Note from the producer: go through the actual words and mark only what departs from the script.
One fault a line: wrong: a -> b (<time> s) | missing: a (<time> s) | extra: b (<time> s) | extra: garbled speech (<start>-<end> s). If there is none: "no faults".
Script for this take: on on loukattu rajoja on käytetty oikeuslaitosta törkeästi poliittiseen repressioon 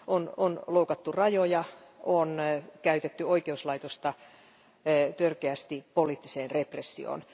no faults